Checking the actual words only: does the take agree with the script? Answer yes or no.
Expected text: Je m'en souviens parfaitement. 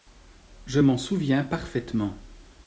yes